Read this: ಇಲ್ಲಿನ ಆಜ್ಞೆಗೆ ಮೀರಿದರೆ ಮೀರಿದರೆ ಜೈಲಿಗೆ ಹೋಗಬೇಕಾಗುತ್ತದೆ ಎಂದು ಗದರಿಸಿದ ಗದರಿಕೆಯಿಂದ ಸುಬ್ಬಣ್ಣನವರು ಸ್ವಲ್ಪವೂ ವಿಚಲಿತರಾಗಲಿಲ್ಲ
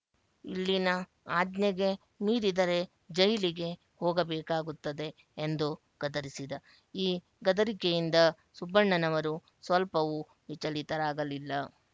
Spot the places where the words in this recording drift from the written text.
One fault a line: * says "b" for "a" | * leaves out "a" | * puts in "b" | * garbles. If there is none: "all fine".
* leaves out "ಮೀರಿದರೆ"
* puts in "ಈ"